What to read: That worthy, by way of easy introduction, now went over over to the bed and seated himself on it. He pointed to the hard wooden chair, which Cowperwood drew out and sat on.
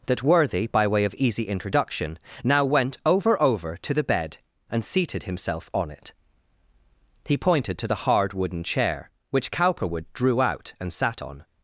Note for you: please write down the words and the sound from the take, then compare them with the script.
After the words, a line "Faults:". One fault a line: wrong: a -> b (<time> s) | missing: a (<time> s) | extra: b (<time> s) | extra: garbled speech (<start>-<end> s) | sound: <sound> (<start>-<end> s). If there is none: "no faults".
That worthy, by way of easy introduction, now went over over to the bed and seated himself on it. He pointed to the hard wooden chair, which Cowperwood drew out and sat on.
Faults:
no faults